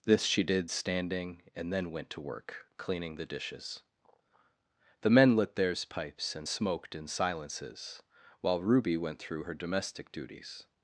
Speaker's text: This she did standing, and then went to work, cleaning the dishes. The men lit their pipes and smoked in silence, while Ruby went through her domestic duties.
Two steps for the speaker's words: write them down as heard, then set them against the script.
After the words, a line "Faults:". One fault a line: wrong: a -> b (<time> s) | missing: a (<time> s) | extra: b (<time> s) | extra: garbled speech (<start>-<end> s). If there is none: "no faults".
This she did standing, and then went to work, cleaning the dishes. The men lit theirs pipes and smoked in silences, while Ruby went through her domestic duties.
Faults:
wrong: their -> theirs (5.6 s)
wrong: silence -> silences (7.1 s)